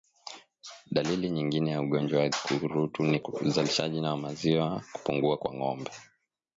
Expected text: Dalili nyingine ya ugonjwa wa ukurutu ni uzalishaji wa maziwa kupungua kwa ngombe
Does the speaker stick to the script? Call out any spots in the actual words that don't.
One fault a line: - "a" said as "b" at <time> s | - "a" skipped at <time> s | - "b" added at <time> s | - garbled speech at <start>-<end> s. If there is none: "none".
none